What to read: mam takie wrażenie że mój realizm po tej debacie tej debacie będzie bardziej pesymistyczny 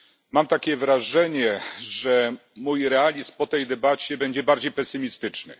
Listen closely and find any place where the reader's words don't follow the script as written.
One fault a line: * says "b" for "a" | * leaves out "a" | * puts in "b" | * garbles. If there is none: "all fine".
* leaves out "tej debacie"